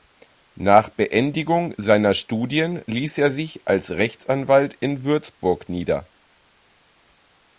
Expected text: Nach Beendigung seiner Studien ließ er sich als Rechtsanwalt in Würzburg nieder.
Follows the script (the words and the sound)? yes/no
yes